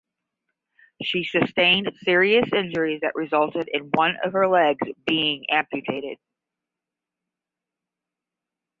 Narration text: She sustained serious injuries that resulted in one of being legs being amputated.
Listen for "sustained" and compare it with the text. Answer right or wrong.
right